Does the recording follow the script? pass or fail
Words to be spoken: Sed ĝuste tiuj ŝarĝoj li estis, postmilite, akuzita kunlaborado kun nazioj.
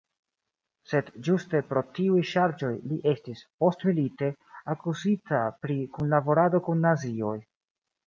fail